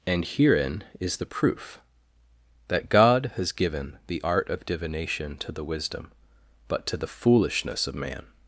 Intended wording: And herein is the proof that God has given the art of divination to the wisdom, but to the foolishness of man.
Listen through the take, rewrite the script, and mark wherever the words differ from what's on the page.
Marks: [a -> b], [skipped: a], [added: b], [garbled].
And herein is the proof that God has given the art of divination to the wisdom, but to the foolishness of man.